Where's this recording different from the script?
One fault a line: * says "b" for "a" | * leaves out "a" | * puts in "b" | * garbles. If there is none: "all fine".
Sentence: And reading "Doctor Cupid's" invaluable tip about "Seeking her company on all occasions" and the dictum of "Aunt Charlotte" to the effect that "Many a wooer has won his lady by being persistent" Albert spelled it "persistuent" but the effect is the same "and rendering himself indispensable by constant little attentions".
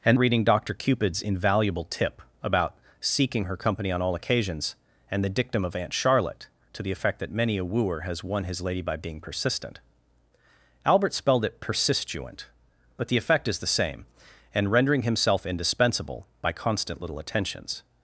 all fine